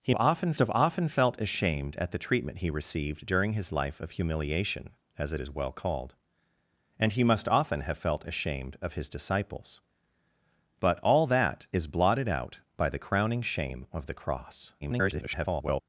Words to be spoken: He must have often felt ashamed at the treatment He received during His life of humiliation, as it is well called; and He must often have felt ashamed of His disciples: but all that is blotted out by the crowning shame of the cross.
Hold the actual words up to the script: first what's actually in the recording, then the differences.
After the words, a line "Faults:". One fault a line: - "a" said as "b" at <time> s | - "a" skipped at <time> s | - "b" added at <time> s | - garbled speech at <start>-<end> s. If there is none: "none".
He often have often felt ashamed at the treatment He received during His life of humiliation, as it is well called; and He must often have felt ashamed of His disciples: but all that is blotted out by the crowning shame of the cross. [garbled]
Faults:
- "must" said as "often" at 0.1 s
- garbled speech at 14.8-15.8 s